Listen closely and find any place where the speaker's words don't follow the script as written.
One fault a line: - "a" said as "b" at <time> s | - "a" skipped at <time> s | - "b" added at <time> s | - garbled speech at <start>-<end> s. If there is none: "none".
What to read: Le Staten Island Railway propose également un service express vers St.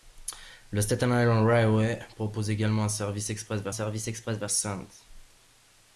- "service express vers" added at 3.7 s